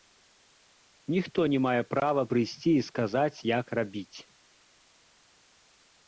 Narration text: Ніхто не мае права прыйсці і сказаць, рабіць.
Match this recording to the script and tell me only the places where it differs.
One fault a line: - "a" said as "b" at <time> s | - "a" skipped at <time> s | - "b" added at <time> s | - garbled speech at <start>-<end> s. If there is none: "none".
- "як" added at 3.6 s